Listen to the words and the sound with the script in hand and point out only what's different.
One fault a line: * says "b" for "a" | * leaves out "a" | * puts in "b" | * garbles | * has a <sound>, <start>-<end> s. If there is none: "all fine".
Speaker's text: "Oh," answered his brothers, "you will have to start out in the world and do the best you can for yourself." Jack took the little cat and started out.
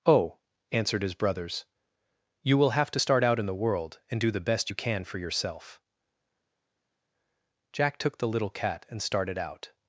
all fine